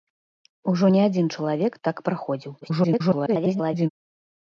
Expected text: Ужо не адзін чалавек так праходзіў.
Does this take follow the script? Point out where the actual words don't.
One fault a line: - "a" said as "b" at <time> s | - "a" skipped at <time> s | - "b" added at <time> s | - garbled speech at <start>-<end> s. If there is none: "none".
- garbled speech at 2.6-3.9 s